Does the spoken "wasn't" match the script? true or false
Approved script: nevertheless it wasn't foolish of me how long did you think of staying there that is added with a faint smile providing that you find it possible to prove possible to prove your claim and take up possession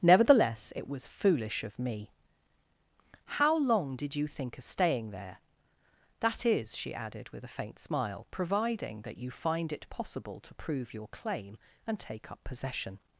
false